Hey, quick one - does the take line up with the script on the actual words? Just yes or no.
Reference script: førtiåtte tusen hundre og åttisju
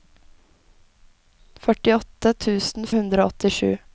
yes